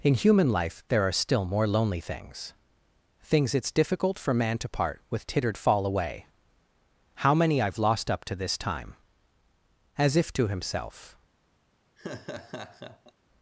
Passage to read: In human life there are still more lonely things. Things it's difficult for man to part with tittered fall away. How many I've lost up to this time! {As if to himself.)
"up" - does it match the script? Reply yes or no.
yes